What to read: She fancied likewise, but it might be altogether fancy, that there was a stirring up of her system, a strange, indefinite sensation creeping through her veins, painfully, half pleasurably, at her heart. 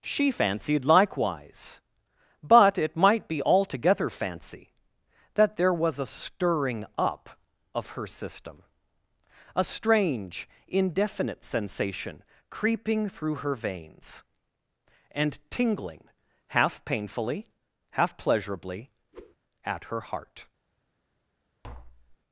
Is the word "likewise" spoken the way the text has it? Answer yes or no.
yes